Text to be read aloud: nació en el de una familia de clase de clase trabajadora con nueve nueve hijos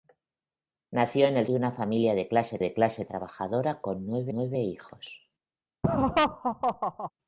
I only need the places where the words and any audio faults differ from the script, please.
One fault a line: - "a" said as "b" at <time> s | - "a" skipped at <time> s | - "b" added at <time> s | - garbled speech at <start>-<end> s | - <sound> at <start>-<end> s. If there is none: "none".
- laugh at 5.8-7.1 s